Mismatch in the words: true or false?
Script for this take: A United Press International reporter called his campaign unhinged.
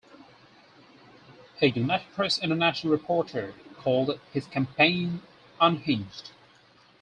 false